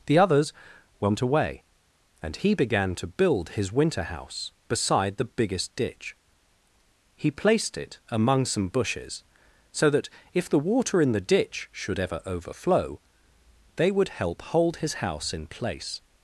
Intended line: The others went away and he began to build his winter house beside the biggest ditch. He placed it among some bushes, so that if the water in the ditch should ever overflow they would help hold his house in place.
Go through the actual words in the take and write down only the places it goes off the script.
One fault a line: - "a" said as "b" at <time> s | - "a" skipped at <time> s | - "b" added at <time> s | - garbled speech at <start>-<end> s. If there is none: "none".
none